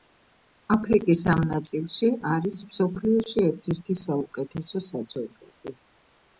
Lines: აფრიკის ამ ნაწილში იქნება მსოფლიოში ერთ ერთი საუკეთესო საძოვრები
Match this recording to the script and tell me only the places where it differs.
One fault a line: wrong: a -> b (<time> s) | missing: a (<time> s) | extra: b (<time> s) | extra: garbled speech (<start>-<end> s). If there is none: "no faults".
wrong: იქნება -> არის (2.3 s)